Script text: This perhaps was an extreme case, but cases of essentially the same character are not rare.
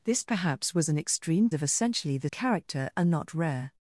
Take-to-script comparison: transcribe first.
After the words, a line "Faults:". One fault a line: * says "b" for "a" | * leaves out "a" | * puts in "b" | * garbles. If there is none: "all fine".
This perhaps was an extreme of essentially the character are not rare.
Faults:
* leaves out "case but cases"
* leaves out "same"